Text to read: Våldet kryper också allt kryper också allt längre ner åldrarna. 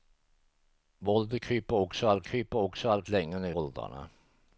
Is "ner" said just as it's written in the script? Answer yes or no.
yes